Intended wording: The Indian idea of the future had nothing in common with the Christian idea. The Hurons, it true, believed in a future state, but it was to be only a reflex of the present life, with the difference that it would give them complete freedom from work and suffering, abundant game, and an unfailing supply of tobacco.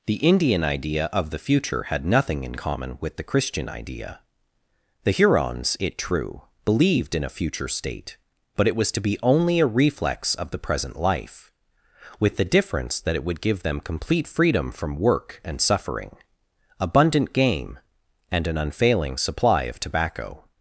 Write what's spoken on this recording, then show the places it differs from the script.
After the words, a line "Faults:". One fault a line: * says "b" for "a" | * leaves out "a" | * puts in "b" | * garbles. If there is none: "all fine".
The Indian idea of the future had nothing in common with the Christian idea. The Hurons, it true, believed in a future state, but it was to be only a reflex of the present life, with the difference that it would give them complete freedom from work and suffering, abundant game, and an unfailing supply of tobacco.
Faults:
all fine